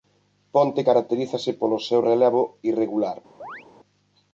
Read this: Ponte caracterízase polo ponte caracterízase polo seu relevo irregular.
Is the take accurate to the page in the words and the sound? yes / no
no